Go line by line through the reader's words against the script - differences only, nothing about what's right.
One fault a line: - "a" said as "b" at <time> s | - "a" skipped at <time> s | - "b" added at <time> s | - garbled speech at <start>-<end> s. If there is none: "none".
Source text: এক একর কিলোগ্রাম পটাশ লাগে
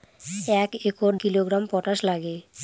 none